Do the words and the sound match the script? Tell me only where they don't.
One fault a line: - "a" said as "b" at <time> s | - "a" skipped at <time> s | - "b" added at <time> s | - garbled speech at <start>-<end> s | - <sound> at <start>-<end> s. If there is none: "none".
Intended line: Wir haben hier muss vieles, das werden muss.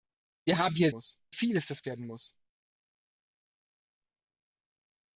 none